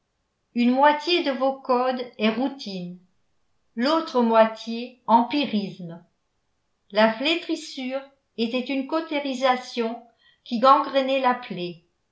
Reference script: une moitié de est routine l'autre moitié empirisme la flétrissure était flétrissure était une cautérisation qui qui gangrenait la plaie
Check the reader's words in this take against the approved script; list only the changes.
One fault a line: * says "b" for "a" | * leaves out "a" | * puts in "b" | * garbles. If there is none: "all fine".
* puts in "vos codes"
* leaves out "flétrissure était"
* leaves out "qui"